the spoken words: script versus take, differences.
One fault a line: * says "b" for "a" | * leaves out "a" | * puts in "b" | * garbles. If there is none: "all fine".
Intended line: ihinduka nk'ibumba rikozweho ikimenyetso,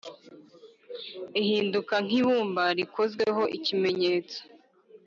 all fine